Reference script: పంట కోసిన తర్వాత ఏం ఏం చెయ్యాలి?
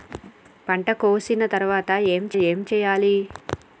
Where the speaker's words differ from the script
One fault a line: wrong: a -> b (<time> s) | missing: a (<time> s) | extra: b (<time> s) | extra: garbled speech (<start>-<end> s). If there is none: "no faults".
no faults